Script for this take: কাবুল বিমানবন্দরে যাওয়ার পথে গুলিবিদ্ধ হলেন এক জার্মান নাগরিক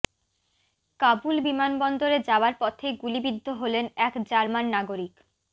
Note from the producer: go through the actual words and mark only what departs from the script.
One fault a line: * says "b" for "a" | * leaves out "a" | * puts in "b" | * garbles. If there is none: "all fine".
all fine